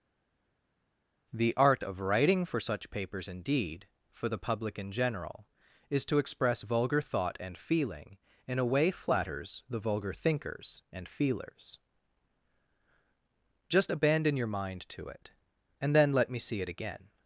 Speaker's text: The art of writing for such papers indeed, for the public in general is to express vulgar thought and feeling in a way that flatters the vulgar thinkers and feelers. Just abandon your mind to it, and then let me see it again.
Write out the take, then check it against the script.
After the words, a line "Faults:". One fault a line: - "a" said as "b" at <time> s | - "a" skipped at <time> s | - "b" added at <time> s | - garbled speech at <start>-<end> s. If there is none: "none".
The art of writing for such papers indeed, for the public in general is to express vulgar thought and feeling in a way flatters the vulgar thinkers and feelers. Just abandon your mind to it, and then let me see it again.
Faults:
- "that" skipped at 8.9 s